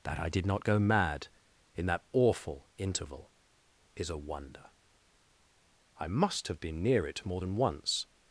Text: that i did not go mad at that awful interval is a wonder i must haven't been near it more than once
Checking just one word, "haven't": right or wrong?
wrong